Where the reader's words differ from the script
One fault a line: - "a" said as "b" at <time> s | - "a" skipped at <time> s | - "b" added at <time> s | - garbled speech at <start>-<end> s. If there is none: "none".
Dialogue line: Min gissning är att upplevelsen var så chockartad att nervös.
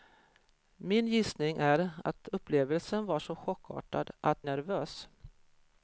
none